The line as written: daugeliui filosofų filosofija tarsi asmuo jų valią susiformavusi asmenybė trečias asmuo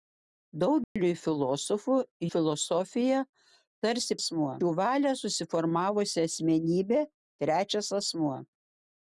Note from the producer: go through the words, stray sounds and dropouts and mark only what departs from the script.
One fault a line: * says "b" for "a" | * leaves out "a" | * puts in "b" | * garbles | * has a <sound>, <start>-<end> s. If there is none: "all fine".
* has a dropout, 0.8-1.0 s